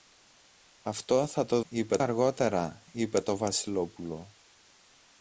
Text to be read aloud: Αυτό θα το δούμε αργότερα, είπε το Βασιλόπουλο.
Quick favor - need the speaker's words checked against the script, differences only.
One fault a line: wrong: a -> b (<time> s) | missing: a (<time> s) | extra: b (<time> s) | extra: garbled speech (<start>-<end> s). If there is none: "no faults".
wrong: δούμε -> είπε (1.7 s)